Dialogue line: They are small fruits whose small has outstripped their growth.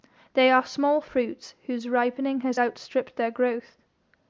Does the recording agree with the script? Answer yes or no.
no